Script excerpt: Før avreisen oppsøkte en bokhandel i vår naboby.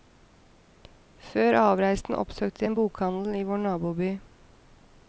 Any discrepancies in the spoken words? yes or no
no